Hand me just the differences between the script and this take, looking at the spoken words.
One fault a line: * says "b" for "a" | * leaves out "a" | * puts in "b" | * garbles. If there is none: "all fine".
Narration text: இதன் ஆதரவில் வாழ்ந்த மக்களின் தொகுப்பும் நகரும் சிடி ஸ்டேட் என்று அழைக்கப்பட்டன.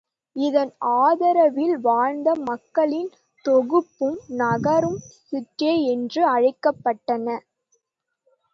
* leaves out "சிடி"